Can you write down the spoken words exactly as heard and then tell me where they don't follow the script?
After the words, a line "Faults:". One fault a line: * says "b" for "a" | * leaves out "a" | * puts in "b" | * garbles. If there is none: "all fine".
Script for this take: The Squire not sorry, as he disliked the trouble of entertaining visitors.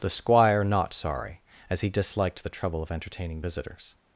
The Squire not sorry, as he disliked the trouble of entertaining visitors.
Faults:
all fine